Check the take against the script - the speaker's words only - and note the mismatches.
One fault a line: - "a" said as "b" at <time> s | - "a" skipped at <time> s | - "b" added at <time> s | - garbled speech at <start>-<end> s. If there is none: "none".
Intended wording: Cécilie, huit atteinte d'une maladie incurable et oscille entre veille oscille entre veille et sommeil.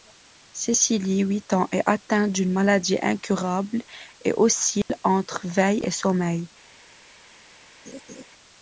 - "ans est" added at 1.5 s
- "oscille entre veille" skipped at 5.8 s